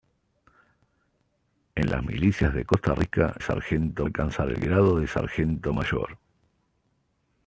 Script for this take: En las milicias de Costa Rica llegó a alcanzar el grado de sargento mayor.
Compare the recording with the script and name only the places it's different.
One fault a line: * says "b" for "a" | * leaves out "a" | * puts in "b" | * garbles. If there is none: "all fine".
* says "sargento" for "llegó"